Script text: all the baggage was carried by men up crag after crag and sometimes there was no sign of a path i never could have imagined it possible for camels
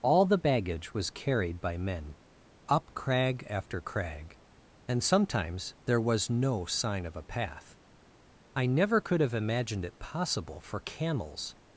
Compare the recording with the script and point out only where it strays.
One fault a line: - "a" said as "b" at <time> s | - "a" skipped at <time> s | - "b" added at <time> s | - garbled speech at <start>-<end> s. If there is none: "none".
none